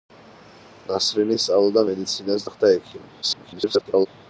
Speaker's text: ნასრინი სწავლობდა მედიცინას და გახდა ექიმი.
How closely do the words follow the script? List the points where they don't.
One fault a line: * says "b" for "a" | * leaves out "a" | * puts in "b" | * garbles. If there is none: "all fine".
* leaves out "და"
* garbles